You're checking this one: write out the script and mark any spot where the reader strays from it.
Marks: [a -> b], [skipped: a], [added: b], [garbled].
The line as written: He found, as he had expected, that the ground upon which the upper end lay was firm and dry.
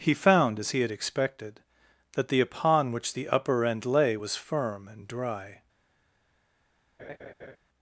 He found, as he had expected, that the [skipped: ground] upon which the upper end lay was firm and dry.